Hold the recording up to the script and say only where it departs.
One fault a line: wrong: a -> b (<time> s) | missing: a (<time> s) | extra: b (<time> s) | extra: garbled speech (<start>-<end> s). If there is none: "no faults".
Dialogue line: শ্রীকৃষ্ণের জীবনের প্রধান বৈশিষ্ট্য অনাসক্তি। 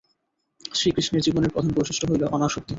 extra: হইল (2.1 s)